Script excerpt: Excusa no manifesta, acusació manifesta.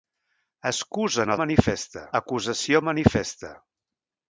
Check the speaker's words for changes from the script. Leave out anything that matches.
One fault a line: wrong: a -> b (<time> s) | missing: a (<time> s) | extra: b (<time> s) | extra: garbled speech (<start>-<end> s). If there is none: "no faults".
no faults